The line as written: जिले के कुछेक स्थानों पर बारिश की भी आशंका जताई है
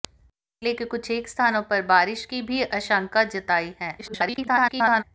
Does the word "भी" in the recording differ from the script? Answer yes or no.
no